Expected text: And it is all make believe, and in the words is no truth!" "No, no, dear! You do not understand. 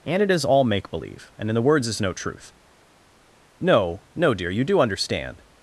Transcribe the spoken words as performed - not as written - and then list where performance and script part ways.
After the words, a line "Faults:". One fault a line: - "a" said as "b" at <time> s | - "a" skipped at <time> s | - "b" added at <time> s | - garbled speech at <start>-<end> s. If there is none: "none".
And it is all make believe, and in the words is no truth!" "No, no, dear! You do understand.
Faults:
- "not" skipped at 4.8 s